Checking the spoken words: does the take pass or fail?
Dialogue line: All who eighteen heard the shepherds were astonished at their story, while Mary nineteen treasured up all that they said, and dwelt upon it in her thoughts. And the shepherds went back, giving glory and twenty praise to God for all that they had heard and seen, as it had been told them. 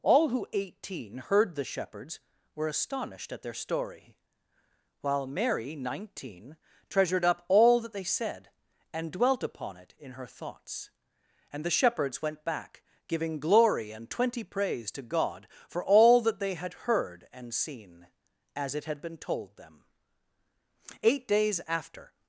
fail